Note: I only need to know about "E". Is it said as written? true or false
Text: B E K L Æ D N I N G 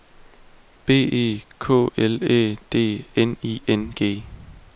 true